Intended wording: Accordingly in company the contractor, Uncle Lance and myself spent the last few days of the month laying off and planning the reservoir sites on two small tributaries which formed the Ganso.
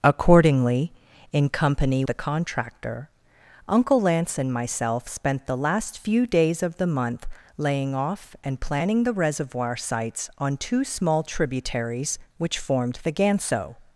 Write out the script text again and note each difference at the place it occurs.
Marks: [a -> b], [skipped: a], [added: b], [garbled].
Accordingly in company the contractor, Uncle Lance and myself spent the last few days of the month laying off and planning the reservoir sites on two small tributaries which formed the Ganso.